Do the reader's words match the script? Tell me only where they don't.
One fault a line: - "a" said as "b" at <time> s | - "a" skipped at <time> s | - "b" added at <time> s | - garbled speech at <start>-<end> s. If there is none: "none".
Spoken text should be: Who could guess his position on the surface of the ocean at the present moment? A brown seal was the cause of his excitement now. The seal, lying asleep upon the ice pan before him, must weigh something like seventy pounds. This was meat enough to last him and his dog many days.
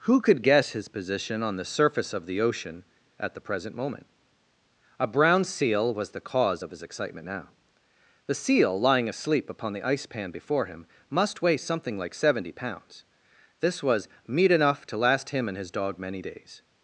none